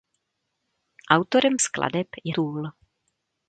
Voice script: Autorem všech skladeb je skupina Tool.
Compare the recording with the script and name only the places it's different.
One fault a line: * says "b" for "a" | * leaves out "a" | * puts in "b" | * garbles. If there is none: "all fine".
* leaves out "všech"
* leaves out "skupina"